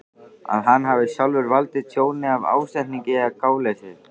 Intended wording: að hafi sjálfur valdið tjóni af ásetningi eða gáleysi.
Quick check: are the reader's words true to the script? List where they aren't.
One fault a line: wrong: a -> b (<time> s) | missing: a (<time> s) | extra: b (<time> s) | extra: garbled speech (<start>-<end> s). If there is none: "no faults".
extra: hann (0.7 s)